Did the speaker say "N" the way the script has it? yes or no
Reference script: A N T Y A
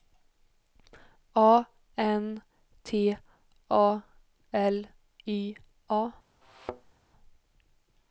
yes